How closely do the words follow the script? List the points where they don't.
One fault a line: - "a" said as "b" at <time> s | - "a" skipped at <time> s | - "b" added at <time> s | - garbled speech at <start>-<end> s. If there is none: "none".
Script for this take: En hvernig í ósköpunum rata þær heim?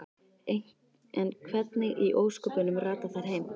none